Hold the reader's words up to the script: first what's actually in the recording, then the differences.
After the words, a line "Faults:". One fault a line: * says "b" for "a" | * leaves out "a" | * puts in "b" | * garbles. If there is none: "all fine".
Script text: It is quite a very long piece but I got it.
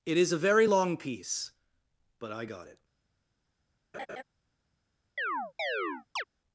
It is a very long piece but I got it.
Faults:
* leaves out "quite"